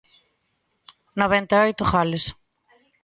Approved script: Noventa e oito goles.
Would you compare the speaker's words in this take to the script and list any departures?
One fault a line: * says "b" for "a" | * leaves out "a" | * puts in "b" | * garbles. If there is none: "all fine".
all fine